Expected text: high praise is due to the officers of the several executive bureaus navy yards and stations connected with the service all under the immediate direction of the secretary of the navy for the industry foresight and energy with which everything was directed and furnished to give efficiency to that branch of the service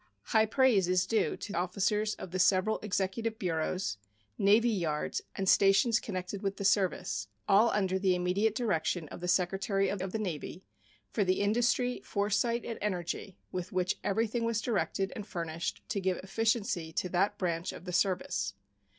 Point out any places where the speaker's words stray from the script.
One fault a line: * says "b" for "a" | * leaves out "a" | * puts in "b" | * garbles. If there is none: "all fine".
* leaves out "the"
* puts in "of"